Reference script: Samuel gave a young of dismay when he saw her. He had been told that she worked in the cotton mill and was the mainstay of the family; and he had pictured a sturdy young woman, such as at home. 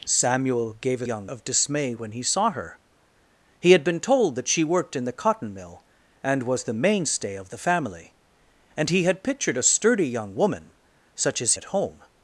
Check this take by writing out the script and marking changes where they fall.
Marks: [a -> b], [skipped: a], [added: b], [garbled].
Samuel gave a young of dismay when he saw her. He had been told that she worked in the cotton mill and was the mainstay of the family; and he had pictured a sturdy young woman, such as at home.